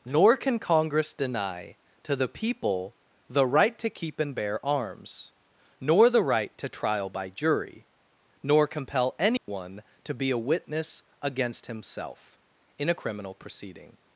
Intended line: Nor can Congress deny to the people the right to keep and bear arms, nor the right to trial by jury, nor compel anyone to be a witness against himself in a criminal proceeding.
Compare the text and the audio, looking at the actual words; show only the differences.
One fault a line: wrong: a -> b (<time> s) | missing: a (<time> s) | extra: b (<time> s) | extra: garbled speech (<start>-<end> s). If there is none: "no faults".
no faults